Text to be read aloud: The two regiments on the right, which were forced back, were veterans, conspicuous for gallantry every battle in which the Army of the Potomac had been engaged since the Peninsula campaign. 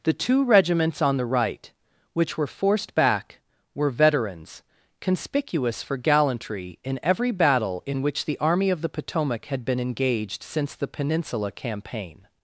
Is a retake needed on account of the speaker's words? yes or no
yes